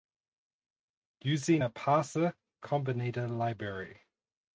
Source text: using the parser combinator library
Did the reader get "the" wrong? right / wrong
wrong